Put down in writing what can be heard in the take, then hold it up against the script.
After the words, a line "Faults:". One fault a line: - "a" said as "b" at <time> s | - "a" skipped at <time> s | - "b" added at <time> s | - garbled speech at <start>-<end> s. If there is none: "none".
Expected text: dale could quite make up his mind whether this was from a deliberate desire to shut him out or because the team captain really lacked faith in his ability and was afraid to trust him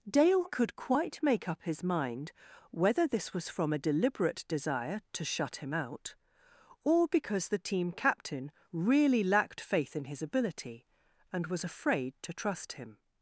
dale could quite make up his mind whether this was from a deliberate desire to shut him out or because the team captain really lacked faith in his ability and was afraid to trust him
Faults:
none